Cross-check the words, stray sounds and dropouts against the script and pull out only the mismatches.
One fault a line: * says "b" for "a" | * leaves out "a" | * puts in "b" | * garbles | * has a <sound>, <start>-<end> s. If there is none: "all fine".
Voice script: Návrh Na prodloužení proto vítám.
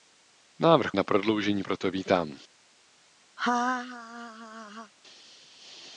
* has a laugh, 3.4-4.9 s